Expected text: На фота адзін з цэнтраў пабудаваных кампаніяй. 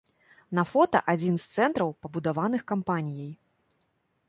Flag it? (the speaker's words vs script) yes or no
no